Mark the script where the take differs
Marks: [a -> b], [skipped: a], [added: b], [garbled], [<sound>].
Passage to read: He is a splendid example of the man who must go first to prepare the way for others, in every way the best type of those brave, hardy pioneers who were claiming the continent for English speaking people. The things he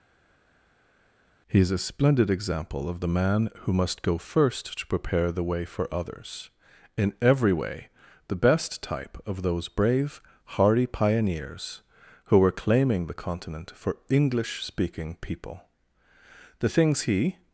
He is a splendid example of the man who must go first to prepare the way for others, in every way the best type of those brave, hardy pioneers who were claiming the continent for English speaking people. The things he